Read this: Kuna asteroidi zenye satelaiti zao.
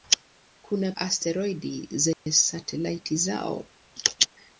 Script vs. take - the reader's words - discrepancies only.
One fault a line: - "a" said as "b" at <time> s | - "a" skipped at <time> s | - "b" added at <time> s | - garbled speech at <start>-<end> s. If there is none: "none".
none